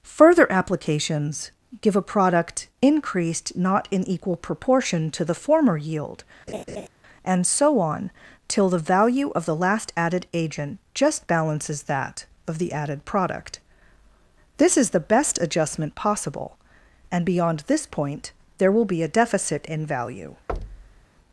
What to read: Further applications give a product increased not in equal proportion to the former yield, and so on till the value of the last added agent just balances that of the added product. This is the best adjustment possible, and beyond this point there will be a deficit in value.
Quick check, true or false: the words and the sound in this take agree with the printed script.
false